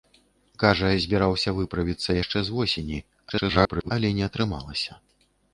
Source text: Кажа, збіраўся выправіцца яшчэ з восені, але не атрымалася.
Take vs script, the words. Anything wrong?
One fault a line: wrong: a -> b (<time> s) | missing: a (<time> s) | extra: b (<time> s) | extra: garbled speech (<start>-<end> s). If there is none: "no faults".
extra: garbled speech (3.3-3.9 s)